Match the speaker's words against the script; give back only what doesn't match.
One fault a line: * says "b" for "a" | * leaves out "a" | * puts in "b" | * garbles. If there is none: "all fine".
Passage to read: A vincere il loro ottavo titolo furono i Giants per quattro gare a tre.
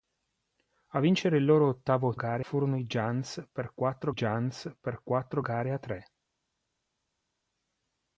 * says "gare" for "titolo"
* puts in "Giants per quattro"